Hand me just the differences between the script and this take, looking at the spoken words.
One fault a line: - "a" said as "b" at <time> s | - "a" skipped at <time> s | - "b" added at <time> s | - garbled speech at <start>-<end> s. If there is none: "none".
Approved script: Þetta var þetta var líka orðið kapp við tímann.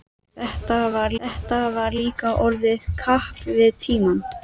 none